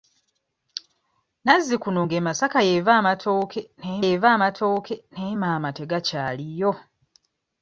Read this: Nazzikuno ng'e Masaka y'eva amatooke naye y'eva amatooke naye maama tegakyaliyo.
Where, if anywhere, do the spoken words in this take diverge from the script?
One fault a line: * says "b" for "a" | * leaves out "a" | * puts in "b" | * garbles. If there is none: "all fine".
all fine